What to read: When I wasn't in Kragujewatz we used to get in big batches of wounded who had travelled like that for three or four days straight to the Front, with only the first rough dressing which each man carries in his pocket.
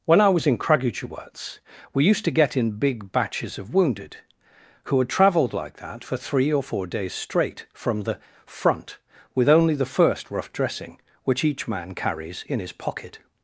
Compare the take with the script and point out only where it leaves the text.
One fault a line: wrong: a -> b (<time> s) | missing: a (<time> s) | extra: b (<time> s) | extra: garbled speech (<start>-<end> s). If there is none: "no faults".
wrong: wasn't -> was (0.3 s)
wrong: to -> from (7.7 s)